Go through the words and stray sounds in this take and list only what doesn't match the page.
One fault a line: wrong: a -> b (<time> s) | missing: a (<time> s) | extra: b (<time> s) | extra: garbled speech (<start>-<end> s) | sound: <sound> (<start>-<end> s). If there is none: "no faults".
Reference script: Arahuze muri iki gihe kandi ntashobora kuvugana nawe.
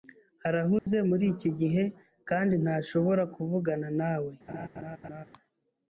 sound: dropout (0.8-0.9 s)
sound: laugh (4.5-5.2 s)